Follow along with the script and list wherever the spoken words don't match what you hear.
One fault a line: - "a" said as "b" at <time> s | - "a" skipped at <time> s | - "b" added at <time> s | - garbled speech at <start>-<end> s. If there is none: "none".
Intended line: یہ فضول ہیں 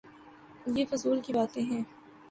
- "کی باتیں" added at 1.2 s